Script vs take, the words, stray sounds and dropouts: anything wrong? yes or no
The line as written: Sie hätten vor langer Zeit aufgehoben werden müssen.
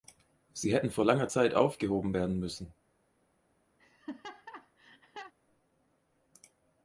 yes